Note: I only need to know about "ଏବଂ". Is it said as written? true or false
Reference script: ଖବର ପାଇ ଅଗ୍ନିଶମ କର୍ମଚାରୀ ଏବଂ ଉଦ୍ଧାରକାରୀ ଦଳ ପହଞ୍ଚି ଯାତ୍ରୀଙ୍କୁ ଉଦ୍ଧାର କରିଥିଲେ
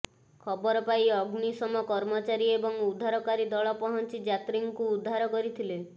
true